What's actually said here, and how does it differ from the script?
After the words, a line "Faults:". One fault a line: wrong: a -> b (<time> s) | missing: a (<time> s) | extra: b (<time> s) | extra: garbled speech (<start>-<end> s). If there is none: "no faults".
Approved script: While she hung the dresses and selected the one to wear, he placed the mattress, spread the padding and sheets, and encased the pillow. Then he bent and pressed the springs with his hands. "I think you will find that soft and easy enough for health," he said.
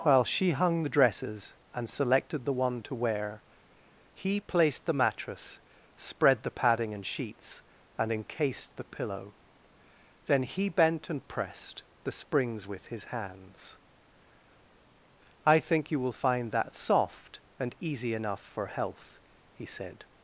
While she hung the dresses and selected the one to wear, he placed the mattress, spread the padding and sheets, and encased the pillow. Then he bent and pressed the springs with his hands. "I think you will find that soft and easy enough for health," he said.
Faults:
no faults